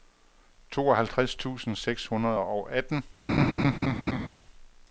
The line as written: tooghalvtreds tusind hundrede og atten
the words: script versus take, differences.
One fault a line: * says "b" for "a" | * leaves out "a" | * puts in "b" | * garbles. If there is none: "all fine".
* puts in "seks"